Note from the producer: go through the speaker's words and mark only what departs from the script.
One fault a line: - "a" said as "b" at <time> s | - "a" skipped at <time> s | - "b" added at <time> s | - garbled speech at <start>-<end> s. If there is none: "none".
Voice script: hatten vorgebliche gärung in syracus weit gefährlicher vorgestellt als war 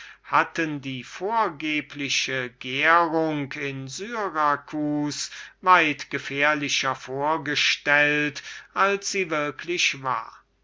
- "die" added at 0.8 s
- "sie würklich" added at 9.1 s